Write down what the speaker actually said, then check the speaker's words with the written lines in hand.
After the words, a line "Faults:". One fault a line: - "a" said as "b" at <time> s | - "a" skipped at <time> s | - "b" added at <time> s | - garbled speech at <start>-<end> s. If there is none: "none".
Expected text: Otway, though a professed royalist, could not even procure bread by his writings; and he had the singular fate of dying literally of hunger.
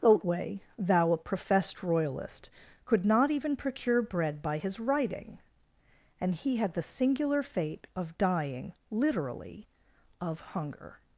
Otway, thou a professed royalist, could not even procure bread by his writing; and he had the singular fate of dying literally of hunger.
Faults:
- "though" said as "thou" at 0.8 s
- "writings" said as "writing" at 4.8 s